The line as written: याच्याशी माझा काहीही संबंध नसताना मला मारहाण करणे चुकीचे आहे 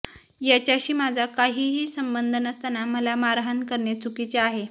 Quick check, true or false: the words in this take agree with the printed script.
true